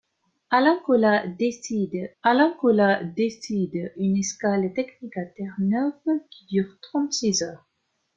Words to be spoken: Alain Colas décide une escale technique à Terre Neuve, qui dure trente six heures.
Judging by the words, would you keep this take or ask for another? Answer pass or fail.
fail